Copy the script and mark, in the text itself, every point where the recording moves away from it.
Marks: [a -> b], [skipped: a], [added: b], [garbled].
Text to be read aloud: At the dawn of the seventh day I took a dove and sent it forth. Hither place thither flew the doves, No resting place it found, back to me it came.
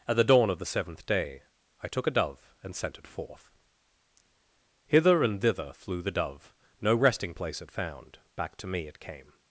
At the dawn of the seventh day I took a dove and sent it forth. Hither [place -> and] thither flew the [doves, -> dove] No resting place it found, back to me it came.